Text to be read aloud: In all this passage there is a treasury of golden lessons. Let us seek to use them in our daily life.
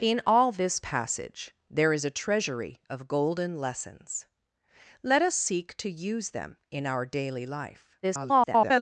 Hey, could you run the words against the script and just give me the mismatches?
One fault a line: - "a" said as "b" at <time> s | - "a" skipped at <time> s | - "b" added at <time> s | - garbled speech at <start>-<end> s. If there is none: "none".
- garbled speech at 8.0-8.8 s